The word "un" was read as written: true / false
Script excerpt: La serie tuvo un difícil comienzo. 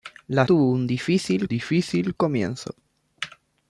true